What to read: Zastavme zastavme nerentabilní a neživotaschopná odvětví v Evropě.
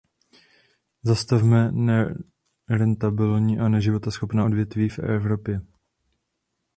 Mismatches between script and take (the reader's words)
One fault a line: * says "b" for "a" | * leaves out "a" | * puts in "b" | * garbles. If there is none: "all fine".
* leaves out "zastavme"